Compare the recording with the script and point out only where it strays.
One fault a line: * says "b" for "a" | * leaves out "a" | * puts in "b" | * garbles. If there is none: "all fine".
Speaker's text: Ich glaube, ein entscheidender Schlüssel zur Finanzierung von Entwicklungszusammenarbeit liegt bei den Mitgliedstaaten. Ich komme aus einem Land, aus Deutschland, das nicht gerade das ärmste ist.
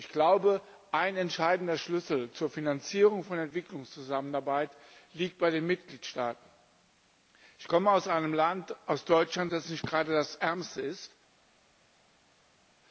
all fine